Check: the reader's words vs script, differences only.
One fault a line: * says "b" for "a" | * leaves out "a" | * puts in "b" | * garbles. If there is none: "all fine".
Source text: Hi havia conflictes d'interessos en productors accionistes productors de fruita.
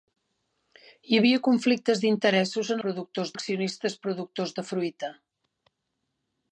all fine